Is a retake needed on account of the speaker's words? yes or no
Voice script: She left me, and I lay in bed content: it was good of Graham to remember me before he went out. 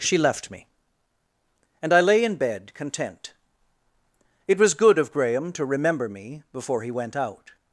no